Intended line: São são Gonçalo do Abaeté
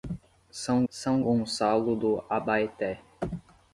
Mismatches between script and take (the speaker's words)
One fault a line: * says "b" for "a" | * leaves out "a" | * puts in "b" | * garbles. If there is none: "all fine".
all fine